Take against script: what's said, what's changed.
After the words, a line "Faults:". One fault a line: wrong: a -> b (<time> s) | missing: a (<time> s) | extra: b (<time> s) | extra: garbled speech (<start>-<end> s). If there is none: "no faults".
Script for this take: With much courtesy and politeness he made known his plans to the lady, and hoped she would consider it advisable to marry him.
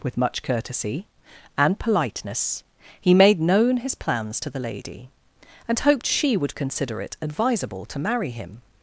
With much courtesy and politeness he made known his plans to the lady, and hoped she would consider it advisable to marry him.
Faults:
no faults